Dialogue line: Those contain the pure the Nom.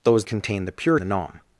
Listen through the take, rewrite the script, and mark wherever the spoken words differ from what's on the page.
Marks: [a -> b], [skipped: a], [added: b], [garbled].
Those contain the pure the Nom.